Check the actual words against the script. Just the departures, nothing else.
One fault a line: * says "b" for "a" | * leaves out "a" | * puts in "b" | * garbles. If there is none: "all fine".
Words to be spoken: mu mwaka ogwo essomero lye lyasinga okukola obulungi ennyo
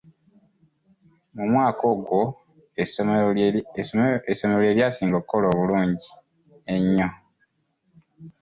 all fine